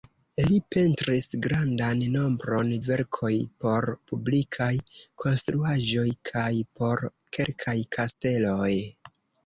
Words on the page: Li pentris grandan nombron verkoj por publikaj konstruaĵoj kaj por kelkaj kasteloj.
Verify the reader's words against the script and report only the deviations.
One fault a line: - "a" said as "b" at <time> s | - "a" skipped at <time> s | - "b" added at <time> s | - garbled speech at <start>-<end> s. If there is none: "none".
none